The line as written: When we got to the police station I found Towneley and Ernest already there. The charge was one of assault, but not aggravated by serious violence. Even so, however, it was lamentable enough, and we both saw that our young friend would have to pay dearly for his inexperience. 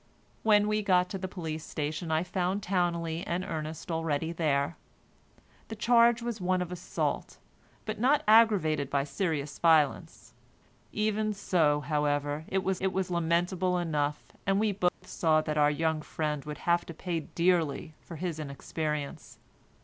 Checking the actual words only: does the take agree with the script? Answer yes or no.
no